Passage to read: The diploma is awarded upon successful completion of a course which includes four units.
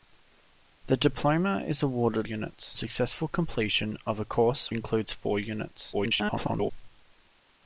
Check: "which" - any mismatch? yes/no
yes